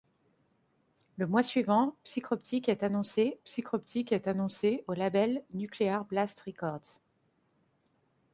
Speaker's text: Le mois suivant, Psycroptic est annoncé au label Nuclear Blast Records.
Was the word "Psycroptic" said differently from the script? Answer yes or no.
no